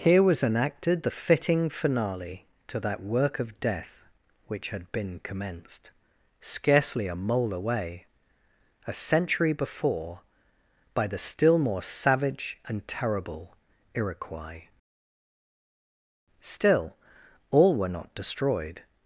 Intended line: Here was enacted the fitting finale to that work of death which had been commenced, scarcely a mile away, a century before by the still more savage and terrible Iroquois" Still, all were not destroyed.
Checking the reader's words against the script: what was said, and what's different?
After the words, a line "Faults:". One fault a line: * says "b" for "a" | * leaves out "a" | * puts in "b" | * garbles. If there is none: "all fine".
Here was enacted the fitting finale to that work of death which had been commenced, scarcely a mole away, a century before by the still more savage and terrible Iroquois" Still, all were not destroyed.
Faults:
* says "mole" for "mile"